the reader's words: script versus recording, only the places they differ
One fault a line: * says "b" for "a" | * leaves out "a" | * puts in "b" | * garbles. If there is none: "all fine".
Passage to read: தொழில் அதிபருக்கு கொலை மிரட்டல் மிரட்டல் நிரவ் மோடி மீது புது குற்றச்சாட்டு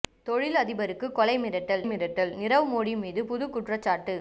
all fine